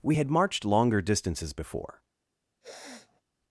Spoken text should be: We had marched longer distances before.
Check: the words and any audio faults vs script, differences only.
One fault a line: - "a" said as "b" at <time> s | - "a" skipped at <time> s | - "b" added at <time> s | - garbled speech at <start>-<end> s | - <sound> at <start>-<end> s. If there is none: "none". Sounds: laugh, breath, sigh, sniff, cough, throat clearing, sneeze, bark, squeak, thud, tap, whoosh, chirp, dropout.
- sniff at 2.6-3.2 s